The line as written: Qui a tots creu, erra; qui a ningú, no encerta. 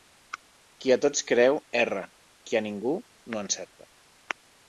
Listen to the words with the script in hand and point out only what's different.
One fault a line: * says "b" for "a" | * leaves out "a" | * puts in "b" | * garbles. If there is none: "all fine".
all fine